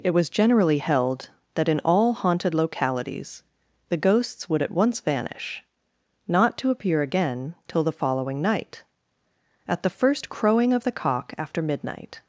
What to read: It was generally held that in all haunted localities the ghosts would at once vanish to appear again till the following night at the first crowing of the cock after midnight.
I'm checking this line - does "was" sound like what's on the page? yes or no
yes